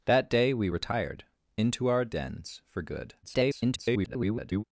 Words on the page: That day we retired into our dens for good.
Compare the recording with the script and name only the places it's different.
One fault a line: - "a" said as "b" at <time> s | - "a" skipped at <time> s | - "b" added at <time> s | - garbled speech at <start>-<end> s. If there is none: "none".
- garbled speech at 3.2-4.6 s